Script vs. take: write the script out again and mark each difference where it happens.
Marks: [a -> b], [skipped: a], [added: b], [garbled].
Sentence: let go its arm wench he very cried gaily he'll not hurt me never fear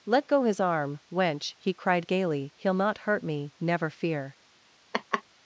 let go [its -> his] arm wench he [skipped: very] cried gaily he'll not hurt me never fear